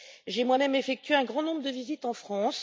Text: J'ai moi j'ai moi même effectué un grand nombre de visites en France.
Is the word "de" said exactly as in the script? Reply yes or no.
yes